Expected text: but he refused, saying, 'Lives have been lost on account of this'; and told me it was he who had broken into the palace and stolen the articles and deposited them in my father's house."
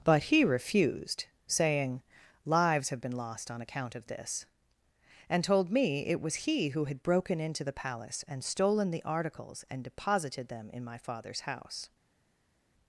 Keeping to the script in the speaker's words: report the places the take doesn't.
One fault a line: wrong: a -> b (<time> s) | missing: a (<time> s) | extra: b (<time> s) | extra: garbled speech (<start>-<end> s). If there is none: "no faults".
no faults